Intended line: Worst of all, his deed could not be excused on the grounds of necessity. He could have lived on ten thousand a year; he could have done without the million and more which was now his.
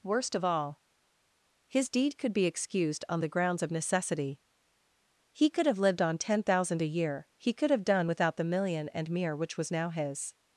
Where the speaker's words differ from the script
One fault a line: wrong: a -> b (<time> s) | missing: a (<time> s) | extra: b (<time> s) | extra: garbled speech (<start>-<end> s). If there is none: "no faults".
missing: not (2.3 s)
wrong: more -> mere (9.1 s)